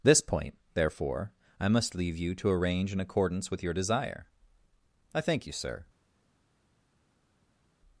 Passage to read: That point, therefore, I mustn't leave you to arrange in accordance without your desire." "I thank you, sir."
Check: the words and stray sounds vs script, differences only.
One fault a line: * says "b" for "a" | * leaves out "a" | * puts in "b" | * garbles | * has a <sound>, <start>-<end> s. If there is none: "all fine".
* says "This" for "That"
* says "must" for "mustn't"
* says "with" for "without"